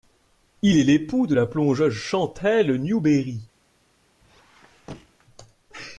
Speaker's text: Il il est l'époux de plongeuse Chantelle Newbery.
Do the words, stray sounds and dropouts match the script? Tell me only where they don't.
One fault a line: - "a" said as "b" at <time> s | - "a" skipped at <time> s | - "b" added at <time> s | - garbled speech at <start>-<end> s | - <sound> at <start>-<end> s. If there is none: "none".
- "il" skipped at 0.8 s
- "la" added at 1.3 s
- squeak at 4.2-5.3 s